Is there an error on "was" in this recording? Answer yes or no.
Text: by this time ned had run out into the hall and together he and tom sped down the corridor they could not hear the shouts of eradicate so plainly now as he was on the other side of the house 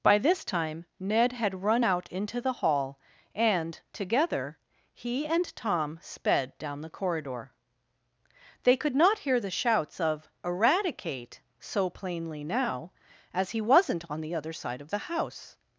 yes